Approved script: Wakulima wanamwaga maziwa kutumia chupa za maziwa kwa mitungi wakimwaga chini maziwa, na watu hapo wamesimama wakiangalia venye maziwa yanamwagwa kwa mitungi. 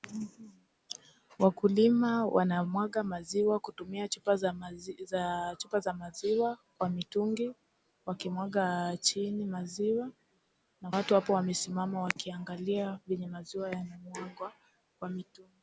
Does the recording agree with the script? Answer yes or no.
yes